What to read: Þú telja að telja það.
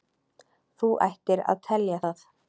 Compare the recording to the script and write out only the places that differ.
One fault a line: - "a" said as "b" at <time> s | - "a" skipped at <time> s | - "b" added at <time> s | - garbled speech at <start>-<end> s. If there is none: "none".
- "telja" said as "ættir" at 1.1 s